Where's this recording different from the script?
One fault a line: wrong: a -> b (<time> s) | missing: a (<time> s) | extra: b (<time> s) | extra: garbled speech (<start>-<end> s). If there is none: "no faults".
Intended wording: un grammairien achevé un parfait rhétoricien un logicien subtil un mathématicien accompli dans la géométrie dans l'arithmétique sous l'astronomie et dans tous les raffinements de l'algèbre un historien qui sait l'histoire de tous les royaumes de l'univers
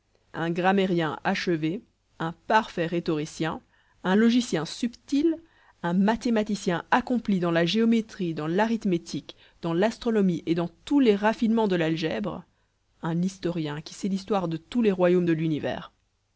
wrong: sous -> dans (9.6 s)